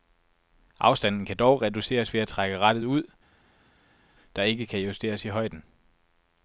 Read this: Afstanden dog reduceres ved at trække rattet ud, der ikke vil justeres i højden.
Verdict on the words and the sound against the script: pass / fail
fail